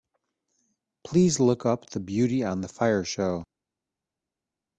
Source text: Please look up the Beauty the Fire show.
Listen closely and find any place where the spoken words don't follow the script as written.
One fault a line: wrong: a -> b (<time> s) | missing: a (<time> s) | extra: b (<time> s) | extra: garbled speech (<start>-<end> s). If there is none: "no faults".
extra: on (2.4 s)